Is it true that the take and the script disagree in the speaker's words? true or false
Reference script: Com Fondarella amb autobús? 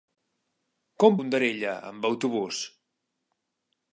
false